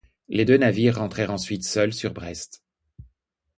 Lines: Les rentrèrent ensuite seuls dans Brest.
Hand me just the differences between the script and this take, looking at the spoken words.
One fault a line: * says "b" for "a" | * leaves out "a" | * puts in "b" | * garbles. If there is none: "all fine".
* puts in "deux navires"
* says "sur" for "dans"